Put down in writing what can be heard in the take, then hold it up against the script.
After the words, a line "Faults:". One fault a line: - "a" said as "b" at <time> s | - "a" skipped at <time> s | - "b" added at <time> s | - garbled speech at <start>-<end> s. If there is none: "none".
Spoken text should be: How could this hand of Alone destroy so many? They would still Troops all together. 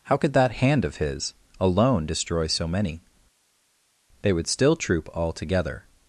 How could that hand of his Alone destroy so many? They would still Troop all together.
Faults:
- "this" said as "that" at 0.3 s
- "his" added at 1.0 s
- "Troops" said as "Troop" at 4.8 s